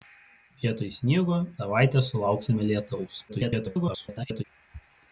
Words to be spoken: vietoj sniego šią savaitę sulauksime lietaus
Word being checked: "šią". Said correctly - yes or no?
no